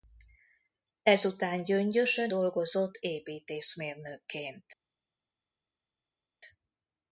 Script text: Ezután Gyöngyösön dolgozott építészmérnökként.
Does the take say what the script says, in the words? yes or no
yes